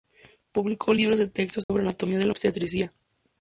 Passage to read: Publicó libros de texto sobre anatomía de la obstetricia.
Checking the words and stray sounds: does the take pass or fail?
fail